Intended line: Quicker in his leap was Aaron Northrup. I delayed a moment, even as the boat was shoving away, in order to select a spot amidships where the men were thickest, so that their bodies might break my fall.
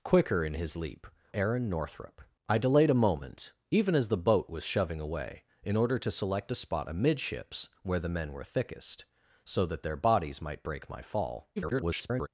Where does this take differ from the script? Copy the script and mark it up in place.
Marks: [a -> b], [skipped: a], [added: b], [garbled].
Quicker in his leap [skipped: was] Aaron Northrup. I delayed a moment, even as the boat was shoving away, in order to select a spot amidships where the men were thickest, so that their bodies might break my fall. [garbled]